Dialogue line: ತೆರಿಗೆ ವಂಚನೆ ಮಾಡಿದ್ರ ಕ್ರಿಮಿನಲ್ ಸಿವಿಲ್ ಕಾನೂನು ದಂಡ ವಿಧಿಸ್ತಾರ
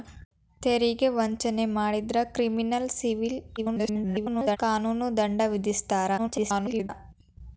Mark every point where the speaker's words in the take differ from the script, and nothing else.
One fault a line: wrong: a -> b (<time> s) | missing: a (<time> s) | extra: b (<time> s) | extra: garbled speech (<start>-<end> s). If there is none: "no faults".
extra: garbled speech (3.6-4.6 s)
extra: garbled speech (6.2-6.9 s)